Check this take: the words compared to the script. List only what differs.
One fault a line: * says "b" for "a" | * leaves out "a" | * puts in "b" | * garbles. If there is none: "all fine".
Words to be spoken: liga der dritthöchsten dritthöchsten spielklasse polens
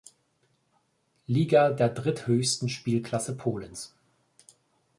* leaves out "dritthöchsten"